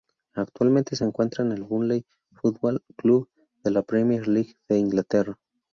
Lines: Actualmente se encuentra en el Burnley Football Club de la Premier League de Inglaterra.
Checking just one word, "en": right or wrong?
right